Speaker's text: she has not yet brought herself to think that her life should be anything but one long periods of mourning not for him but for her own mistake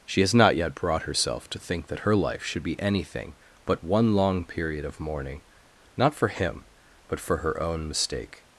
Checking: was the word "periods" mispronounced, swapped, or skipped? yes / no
yes